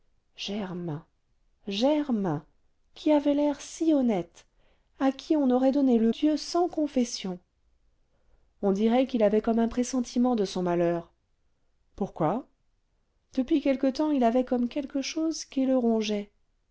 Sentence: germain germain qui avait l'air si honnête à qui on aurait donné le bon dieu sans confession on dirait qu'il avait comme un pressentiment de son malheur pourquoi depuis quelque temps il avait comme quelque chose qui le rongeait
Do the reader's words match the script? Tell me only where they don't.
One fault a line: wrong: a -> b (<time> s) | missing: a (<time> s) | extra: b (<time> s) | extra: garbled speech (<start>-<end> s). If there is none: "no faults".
missing: bon (6.1 s)